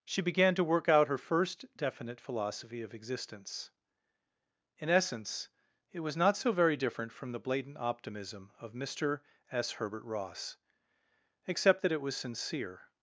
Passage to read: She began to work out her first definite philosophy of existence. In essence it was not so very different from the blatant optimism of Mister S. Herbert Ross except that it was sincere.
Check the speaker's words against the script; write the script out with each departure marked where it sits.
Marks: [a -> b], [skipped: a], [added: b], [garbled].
She began to work out her first definite philosophy of existence. In essence it was not so very different from the blatant optimism of Mister S. Herbert Ross except that it was sincere.